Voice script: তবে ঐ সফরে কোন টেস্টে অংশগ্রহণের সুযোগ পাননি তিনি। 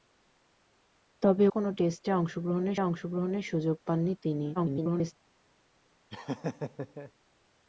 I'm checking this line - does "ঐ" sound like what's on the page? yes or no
no